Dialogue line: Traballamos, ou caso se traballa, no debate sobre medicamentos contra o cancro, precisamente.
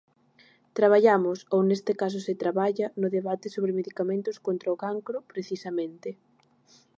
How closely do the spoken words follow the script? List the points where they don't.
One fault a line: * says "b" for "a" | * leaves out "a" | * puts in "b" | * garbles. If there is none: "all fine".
* puts in "neste"